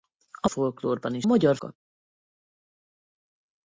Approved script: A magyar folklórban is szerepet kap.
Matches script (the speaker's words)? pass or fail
fail